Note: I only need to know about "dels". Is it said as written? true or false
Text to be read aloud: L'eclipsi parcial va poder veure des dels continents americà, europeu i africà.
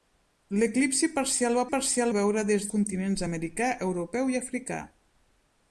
false